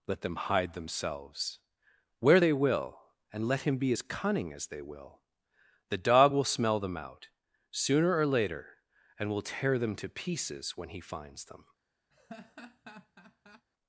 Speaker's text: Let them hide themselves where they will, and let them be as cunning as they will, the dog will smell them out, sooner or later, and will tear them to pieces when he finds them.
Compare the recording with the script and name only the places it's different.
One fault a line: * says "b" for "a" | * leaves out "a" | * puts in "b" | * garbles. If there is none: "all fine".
* says "him" for "them"